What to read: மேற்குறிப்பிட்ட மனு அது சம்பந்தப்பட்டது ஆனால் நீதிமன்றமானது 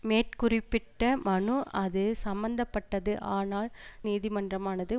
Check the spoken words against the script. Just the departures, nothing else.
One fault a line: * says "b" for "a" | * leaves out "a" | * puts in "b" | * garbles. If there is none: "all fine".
all fine